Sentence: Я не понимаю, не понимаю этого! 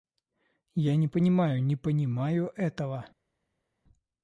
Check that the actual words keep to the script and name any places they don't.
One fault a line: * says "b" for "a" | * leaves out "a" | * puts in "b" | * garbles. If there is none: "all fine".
all fine